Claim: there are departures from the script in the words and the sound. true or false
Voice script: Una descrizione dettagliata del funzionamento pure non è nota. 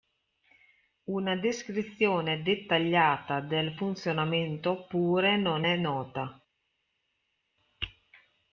false